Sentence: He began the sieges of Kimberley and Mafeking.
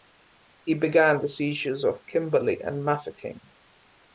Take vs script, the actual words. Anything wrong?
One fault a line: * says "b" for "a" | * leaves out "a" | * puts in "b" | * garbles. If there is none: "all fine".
all fine